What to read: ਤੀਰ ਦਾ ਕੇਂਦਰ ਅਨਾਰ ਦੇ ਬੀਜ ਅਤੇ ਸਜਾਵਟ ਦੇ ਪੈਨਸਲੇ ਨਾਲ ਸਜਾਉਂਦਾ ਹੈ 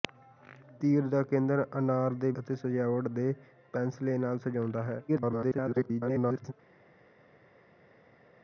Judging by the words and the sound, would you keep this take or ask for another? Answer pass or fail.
fail